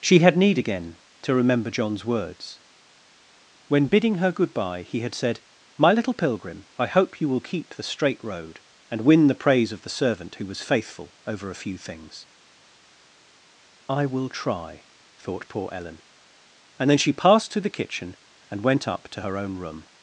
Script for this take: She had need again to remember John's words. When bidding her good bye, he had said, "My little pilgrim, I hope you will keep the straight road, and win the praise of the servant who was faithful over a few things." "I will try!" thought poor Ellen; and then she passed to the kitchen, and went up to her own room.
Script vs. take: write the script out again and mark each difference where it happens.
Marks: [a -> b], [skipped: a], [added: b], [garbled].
She had need again to remember John's words. When bidding her good bye, he had said, "My little pilgrim, I hope you will keep the straight road, and win the praise of the servant who was faithful over a few things." "I will try!" thought poor Ellen; and then she passed to the kitchen, and went up to her own room.